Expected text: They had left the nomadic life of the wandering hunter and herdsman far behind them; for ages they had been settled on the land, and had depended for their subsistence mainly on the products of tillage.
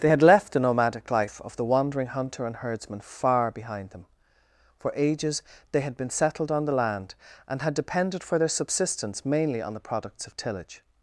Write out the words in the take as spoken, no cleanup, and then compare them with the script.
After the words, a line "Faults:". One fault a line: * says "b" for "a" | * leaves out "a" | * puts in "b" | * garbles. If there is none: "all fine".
They had left the nomadic life of the wandering hunter and herdsman far behind them; for ages they had been settled on the land, and had depended for their subsistence mainly on the products of tillage.
Faults:
all fine